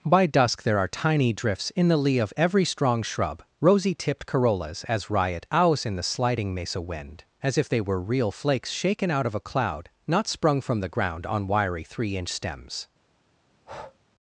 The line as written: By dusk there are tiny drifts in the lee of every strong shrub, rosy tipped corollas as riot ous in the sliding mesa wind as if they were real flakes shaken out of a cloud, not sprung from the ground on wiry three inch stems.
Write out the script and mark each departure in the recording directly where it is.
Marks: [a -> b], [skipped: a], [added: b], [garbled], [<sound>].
By dusk there are tiny drifts in the lee of every strong shrub, rosy tipped corollas as riot [ous -> owls] in the sliding mesa wind as if they were real flakes shaken out of a cloud, not sprung from the ground on wiry three inch stems. [breath]